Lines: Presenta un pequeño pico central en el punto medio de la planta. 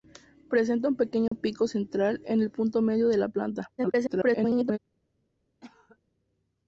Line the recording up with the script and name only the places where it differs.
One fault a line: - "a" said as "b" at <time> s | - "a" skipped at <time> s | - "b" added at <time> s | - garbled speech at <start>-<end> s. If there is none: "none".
- garbled speech at 3.8-4.8 s